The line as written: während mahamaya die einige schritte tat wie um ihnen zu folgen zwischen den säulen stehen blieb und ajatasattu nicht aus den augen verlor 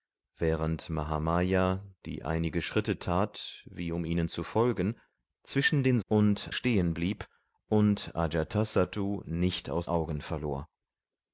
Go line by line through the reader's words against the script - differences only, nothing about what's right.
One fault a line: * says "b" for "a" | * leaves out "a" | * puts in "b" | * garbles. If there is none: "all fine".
* says "und" for "säulen"
* leaves out "den"